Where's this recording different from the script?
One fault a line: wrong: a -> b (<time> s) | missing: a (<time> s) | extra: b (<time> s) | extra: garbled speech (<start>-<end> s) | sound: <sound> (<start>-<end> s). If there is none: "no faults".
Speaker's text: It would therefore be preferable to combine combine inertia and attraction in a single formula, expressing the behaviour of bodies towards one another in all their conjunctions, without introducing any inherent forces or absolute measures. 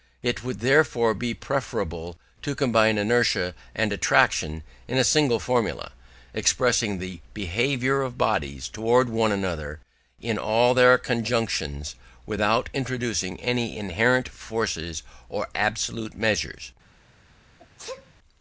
missing: combine (3.0 s)
sound: sneeze (17.6-18.1 s)